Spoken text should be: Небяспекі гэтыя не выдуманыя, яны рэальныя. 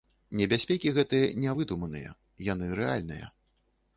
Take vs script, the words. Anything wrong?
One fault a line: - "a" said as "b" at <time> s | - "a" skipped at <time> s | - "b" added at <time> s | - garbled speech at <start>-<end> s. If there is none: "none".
none